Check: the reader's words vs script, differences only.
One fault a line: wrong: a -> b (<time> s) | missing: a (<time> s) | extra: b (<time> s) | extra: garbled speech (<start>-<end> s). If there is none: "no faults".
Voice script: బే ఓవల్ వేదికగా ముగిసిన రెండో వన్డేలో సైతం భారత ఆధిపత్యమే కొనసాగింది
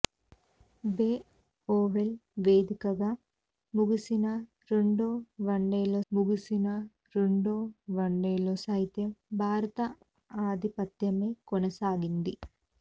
extra: ముగిసిన రెండో వన్డేలో (6.1 s)